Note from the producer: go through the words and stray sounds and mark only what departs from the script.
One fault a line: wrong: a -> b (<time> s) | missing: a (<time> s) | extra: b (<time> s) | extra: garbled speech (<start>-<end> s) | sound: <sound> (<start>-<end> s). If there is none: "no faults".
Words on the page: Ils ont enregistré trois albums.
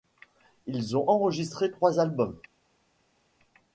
no faults